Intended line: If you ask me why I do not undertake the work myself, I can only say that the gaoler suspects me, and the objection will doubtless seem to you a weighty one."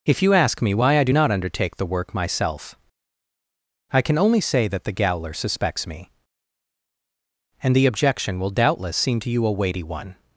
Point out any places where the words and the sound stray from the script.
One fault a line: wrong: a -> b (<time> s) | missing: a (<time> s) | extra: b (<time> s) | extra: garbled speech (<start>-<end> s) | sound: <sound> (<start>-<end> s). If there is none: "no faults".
no faults